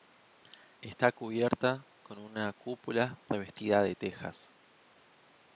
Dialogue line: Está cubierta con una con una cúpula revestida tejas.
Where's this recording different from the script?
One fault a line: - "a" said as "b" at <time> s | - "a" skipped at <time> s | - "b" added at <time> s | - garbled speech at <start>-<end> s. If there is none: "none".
- "con una" skipped at 2.5 s
- "de" added at 3.8 s